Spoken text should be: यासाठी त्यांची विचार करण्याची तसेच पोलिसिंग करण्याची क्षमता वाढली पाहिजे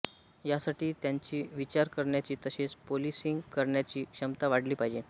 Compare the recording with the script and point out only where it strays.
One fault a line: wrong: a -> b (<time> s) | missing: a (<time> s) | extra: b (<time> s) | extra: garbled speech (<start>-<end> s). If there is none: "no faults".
no faults